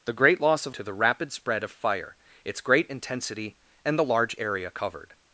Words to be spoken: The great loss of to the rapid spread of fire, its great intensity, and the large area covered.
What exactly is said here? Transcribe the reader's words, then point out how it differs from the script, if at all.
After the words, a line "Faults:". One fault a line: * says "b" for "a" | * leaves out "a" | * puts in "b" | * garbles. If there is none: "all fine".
The great loss of to the rapid spread of fire, its great intensity, and the large area covered.
Faults:
all fine